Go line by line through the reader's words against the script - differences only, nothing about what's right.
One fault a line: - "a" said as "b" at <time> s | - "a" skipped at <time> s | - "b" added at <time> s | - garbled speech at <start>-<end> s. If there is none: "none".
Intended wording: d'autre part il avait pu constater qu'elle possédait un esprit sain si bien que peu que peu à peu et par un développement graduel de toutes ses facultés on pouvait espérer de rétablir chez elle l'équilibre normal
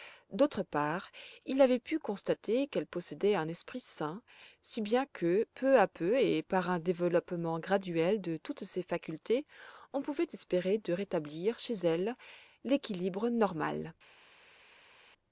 - "que peu" skipped at 5.8 s